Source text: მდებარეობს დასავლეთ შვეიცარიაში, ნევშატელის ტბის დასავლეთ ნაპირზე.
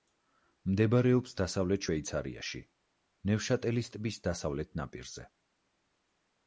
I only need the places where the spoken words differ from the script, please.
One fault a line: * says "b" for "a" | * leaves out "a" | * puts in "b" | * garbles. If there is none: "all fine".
all fine